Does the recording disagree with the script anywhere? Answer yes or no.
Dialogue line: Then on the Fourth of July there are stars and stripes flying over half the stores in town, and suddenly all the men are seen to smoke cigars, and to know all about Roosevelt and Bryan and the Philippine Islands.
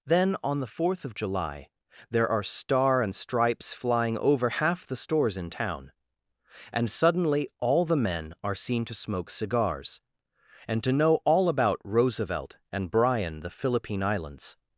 yes